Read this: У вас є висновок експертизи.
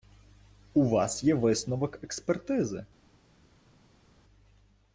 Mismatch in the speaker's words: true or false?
false